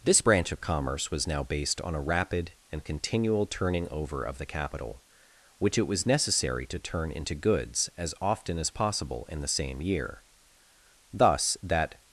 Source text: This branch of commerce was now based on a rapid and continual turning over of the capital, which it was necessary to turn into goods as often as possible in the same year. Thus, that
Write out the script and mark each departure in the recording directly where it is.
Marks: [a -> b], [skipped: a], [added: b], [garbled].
This branch of commerce was now based on a rapid and continual turning over of the capital, which it was necessary to turn into goods as often as possible in the same year. Thus, that